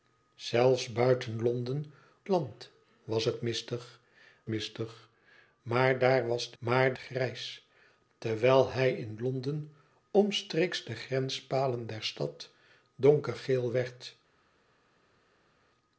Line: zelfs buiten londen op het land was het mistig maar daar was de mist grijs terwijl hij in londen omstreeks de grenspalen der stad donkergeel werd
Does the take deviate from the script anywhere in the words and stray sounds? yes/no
yes